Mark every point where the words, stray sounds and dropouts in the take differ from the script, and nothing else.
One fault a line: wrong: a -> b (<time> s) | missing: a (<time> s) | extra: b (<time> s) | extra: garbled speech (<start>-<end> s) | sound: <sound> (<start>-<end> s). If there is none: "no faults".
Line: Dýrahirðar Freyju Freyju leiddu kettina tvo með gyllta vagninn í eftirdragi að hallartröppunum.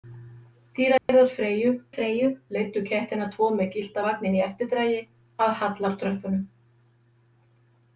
sound: dropout (1.0-1.1 s)